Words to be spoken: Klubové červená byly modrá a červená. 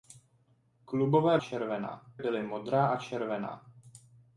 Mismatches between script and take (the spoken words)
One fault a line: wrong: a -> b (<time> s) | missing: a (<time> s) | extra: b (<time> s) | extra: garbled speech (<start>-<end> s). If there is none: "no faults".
no faults